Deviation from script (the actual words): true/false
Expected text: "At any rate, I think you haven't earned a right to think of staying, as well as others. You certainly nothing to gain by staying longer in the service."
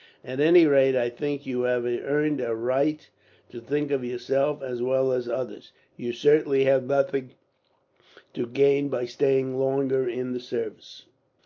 true